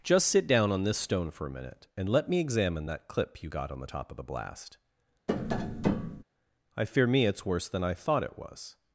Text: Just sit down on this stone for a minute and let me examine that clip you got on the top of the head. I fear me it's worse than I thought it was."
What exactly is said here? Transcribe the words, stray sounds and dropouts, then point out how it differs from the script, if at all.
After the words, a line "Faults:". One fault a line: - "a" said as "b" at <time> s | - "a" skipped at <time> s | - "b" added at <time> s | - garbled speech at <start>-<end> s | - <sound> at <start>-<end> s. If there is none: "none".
Just sit down on this stone for a minute and let me examine that clip you got on the top of the blast. I fear me it's worse than I thought it was."
Faults:
- "head" said as "blast" at 4.2 s
- tap at 5.3-6.2 s